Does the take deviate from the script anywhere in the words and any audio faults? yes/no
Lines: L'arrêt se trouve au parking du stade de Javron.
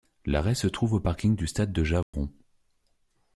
yes